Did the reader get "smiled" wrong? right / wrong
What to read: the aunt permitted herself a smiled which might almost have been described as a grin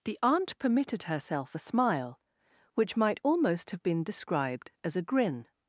wrong